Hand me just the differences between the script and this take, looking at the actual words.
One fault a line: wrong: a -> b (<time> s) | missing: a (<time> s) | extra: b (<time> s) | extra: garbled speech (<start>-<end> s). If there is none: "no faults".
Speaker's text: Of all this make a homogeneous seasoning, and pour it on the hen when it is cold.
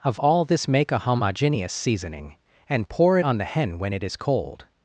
no faults